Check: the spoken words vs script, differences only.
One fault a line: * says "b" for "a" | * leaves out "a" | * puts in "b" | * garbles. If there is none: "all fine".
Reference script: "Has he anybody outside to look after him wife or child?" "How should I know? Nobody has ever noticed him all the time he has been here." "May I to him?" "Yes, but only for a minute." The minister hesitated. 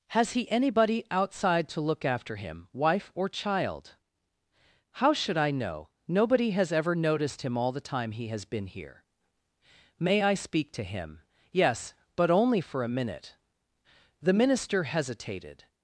* puts in "speak"